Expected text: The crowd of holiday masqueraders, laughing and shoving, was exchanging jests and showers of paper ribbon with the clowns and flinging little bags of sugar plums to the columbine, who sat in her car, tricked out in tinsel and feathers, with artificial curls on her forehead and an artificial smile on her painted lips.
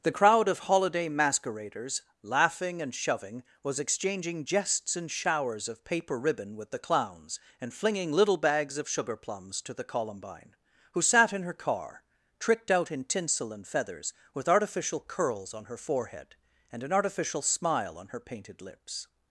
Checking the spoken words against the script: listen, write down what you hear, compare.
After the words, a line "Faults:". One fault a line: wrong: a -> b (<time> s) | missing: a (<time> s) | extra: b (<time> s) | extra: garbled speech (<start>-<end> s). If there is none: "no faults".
The crowd of holiday masqueraders, laughing and shoving, was exchanging jests and showers of paper ribbon with the clowns and flinging little bags of sugar plums to the columbine, who sat in her car, tricked out in tinsel and feathers, with artificial curls on her forehead and an artificial smile on her painted lips.
Faults:
no faults